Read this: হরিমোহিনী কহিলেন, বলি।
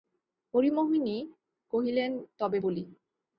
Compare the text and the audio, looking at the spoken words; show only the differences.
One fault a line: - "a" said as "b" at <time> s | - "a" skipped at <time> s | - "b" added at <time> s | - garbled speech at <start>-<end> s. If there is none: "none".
- "তবে" added at 2.4 s